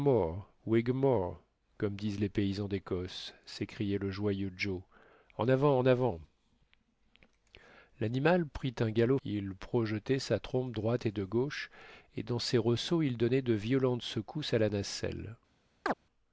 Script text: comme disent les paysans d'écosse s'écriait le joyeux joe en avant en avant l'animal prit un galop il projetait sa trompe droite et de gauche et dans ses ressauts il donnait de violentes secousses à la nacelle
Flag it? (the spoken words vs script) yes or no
no